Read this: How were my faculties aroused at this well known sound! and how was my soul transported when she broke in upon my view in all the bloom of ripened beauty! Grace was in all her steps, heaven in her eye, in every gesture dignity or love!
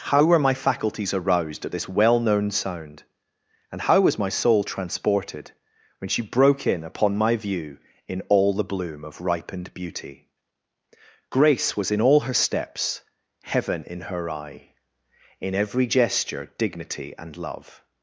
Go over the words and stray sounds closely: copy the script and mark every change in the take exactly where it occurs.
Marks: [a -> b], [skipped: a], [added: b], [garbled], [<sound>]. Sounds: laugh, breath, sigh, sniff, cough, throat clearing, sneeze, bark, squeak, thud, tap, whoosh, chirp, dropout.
How were my faculties aroused at this well known sound! and how was my soul transported when she broke in upon my view in all the bloom of ripened beauty! Grace was in all her steps, heaven in her eye, in every gesture dignity [or -> and] love!